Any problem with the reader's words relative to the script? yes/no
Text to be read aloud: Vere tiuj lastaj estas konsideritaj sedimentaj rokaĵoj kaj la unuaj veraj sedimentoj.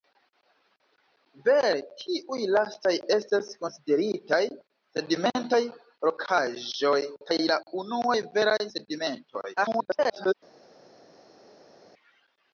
yes